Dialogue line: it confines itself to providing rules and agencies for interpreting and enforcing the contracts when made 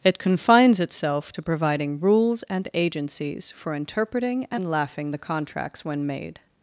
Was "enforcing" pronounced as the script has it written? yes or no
no